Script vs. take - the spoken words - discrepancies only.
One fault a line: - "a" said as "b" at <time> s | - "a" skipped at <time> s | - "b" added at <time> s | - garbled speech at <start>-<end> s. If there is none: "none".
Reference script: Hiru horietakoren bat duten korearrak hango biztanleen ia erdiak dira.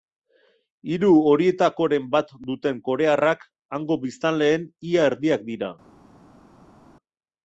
none